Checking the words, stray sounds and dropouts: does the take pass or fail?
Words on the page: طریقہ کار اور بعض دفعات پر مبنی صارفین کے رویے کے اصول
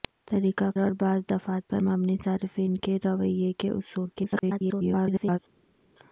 fail